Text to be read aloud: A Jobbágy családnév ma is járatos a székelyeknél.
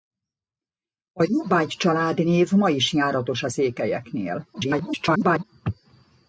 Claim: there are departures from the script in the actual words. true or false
true